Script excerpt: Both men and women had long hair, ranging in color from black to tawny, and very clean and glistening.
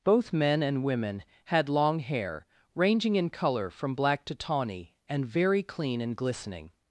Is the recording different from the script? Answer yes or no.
no